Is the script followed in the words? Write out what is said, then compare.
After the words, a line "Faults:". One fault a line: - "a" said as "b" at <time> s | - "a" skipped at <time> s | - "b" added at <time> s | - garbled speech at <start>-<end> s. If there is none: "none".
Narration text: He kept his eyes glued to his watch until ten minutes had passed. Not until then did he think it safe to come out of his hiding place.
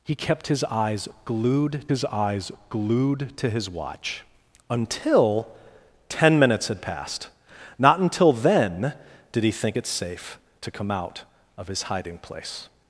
He kept his eyes glued his eyes glued to his watch until ten minutes had passed. Not until then did he think it safe to come out of his hiding place.
Faults:
- "his eyes glued" added at 1.9 s